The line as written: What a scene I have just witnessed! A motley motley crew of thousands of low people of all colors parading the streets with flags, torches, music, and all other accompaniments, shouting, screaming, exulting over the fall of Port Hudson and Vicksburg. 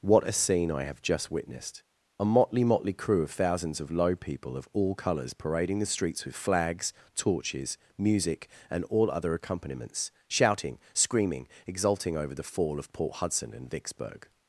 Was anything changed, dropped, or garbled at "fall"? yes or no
no